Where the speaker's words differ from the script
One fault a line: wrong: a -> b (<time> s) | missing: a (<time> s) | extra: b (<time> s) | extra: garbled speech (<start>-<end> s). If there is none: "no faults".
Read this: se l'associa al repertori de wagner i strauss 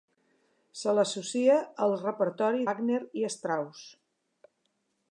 missing: de (2.7 s)